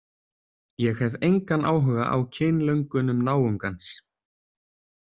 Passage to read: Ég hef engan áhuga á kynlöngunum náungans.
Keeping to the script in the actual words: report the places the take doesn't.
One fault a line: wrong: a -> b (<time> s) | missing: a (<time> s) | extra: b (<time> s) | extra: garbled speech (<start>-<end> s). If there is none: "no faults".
no faults